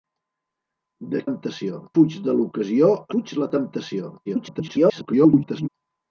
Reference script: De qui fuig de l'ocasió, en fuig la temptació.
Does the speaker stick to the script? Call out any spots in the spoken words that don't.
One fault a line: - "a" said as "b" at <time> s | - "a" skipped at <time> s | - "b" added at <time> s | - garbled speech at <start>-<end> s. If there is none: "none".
- "qui" said as "temptació" at 1.3 s
- "en" skipped at 2.9 s
- garbled speech at 4.3-5.7 s